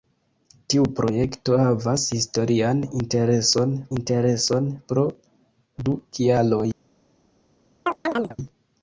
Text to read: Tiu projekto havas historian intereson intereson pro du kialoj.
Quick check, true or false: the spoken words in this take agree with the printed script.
true